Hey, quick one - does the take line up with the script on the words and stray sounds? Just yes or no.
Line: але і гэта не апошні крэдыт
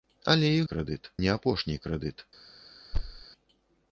no